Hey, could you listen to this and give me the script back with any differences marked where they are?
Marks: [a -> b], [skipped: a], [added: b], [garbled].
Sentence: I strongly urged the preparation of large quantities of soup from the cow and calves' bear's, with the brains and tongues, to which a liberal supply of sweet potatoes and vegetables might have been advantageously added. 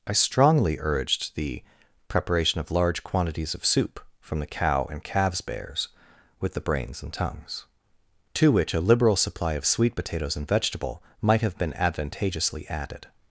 I strongly urged the preparation of large quantities of soup from the cow and calves' bear's, with the brains and tongues, to which a liberal supply of sweet potatoes and [vegetables -> vegetable] might have been advantageously added.